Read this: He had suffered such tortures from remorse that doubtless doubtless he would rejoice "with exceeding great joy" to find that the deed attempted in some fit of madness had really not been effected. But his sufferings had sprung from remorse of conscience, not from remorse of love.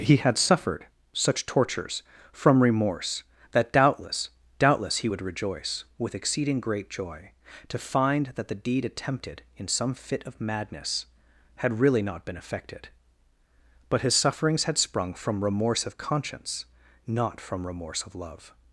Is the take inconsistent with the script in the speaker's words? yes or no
no